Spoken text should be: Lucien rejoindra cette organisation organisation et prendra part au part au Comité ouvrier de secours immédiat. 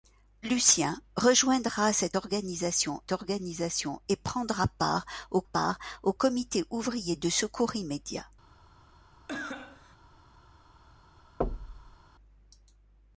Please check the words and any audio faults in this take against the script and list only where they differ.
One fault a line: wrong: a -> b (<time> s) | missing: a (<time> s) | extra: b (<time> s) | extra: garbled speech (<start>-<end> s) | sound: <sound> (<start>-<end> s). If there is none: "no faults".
sound: cough (9.3-10.0 s)
sound: thud (11.4-12.0 s)